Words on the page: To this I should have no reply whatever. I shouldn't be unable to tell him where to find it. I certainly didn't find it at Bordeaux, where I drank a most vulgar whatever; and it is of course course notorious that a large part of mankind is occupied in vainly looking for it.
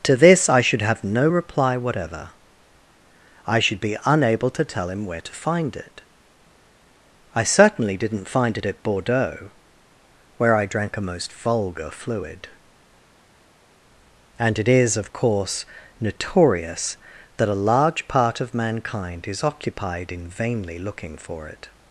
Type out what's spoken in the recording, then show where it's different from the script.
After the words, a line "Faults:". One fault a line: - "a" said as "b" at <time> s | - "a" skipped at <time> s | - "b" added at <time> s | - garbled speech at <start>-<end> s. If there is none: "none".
To this I should have no reply whatever. I should be unable to tell him where to find it. I certainly didn't find it at Bordeaux, where I drank a most vulgar fluid; and it is of course notorious that a large part of mankind is occupied in vainly looking for it.
Faults:
- "shouldn't" said as "should" at 3.6 s
- "whatever" said as "fluid" at 11.9 s
- "course" skipped at 15.6 s